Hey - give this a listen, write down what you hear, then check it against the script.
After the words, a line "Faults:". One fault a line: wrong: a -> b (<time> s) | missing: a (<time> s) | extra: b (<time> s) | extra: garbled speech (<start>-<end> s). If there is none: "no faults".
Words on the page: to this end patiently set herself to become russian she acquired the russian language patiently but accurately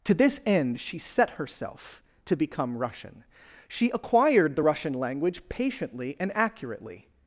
to this end she set herself to become russian she acquired the russian language patiently and accurately
Faults:
wrong: patiently -> she (0.8 s)
wrong: but -> and (6.2 s)